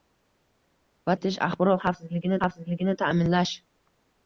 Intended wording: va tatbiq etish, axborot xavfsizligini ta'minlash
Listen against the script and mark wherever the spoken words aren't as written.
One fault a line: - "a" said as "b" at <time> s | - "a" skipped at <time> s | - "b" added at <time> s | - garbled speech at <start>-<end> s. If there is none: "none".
- "tatbiq" skipped at 1.1 s
- "xavfsizligini" added at 2.4 s